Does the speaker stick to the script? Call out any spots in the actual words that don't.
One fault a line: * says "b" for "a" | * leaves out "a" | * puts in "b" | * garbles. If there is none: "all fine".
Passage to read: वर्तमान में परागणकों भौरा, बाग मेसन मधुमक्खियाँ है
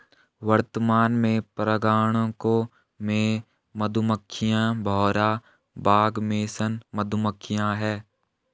* puts in "में मधुमक्खियां"